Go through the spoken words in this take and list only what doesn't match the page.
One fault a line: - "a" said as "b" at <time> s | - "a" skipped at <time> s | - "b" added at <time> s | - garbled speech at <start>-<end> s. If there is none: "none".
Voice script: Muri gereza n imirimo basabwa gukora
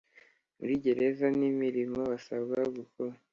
none